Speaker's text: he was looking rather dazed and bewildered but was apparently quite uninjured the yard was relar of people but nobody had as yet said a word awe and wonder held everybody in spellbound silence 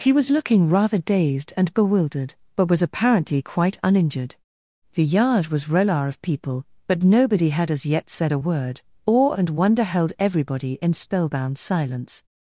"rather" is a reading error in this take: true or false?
false